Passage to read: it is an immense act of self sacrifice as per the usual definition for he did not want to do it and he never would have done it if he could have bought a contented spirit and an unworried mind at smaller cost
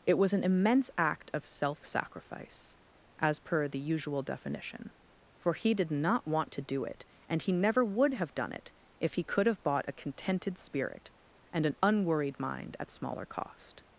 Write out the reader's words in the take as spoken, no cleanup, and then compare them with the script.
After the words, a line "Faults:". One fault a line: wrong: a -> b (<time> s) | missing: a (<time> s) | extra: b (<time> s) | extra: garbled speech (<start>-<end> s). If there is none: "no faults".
it was an immense act of self sacrifice as per the usual definition for he did not want to do it and he never would have done it if he could have bought a contented spirit and an unworried mind at smaller cost
Faults:
wrong: is -> was (0.2 s)